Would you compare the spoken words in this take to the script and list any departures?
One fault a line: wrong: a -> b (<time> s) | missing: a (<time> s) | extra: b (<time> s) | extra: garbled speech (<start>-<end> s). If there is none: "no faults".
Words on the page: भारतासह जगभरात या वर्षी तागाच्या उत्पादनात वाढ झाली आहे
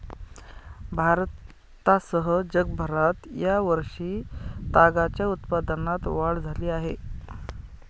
no faults